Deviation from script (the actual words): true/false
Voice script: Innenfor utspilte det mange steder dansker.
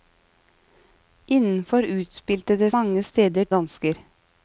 false